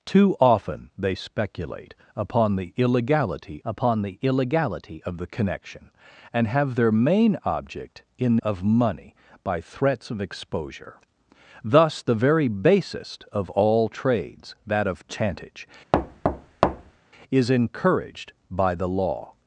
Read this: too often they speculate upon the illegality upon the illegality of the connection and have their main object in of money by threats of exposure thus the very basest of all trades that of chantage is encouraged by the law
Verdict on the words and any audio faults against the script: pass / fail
fail